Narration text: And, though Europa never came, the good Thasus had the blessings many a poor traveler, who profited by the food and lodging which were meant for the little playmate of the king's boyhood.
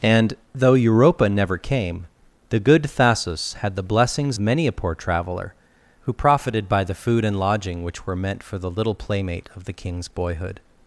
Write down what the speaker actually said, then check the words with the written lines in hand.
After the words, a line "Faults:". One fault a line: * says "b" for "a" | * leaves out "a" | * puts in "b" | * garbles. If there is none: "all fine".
And, though Europa never came, the good Thasus had the blessings many a poor traveler, who profited by the food and lodging which were meant for the little playmate of the king's boyhood.
Faults:
all fine